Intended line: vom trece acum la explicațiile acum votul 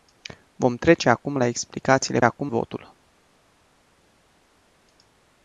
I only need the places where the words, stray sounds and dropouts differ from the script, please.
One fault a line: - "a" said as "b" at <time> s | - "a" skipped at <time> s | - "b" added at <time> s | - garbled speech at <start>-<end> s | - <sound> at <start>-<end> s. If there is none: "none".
none